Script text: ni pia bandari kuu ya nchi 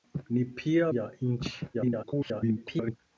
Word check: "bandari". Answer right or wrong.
wrong